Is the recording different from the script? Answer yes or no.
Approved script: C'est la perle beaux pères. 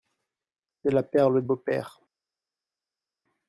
no